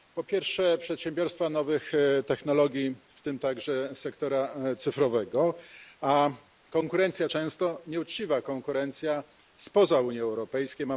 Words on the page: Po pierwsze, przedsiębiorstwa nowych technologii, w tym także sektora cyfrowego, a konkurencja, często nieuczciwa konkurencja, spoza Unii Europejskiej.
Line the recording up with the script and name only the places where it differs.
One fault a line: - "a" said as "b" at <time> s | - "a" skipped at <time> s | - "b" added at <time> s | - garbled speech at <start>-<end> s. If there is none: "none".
none